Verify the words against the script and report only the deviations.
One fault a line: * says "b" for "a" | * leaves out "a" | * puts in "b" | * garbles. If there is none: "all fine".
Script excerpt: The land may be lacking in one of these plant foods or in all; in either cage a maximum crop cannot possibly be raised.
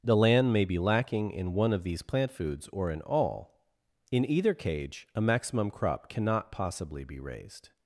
all fine